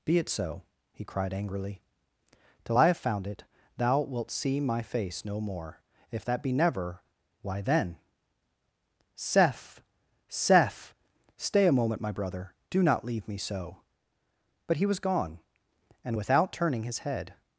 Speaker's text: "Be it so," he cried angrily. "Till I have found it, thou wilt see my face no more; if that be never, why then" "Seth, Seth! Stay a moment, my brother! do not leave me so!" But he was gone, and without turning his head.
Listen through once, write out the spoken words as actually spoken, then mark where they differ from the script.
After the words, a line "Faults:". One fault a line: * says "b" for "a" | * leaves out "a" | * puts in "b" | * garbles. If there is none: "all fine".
"Be it so," he cried angrily. "Till I have found it, thou wilt see my face no more; if that be never, why then" "Seth, Seth! Stay a moment, my brother! do not leave me so!" But he was gone, and without turning his head.
Faults:
all fine